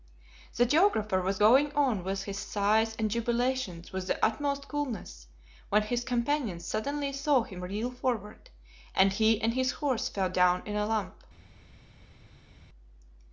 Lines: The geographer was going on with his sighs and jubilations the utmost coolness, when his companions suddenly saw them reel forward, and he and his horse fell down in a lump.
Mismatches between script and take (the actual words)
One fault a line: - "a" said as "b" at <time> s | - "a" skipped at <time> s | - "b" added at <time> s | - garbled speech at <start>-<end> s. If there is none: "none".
- "with" added at 3.9 s
- "them" said as "him" at 7.4 s